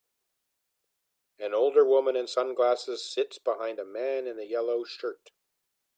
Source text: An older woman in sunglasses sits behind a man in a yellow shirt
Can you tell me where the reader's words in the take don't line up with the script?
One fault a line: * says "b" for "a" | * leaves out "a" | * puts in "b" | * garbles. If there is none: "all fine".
all fine